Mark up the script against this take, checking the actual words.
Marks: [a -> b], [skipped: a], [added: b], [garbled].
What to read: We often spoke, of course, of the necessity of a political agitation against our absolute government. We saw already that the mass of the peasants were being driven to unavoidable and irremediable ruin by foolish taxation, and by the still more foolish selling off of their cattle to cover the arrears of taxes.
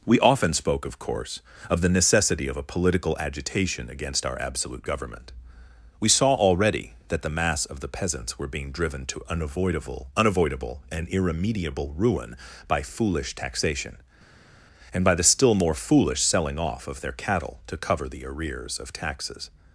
We often spoke, of course, of the necessity of a political agitation against our absolute government. We saw already that the mass of the peasants were being driven to unavoidable [added: unavoidable] and irremediable ruin by foolish taxation, and by the still more foolish selling off of their cattle to cover the arrears of taxes.